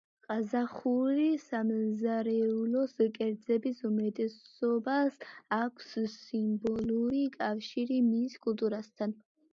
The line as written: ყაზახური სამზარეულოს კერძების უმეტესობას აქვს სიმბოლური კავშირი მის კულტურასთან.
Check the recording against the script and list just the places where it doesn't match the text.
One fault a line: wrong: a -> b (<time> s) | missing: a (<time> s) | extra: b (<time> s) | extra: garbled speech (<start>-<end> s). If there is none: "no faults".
no faults